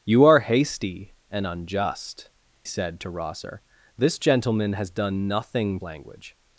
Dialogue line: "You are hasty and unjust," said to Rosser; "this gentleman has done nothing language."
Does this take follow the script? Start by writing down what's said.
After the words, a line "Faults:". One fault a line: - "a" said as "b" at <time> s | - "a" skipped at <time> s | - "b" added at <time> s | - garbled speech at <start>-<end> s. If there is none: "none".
"You are hasty and unjust," said to Rosser; "this gentleman has done nothing language."
Faults:
none